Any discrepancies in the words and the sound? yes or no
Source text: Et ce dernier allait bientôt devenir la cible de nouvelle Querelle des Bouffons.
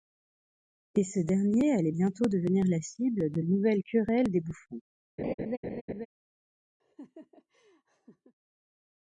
yes